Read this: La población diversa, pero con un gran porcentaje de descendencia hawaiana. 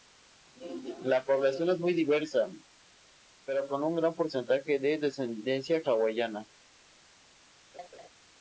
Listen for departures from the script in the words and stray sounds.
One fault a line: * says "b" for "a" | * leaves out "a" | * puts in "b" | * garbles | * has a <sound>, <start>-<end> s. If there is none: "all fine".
* puts in "es muy"
* has a laugh, 7.7-8.1 s